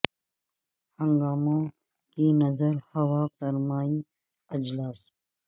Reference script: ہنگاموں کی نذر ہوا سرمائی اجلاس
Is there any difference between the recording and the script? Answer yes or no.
no